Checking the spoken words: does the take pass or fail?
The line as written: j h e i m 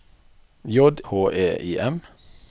pass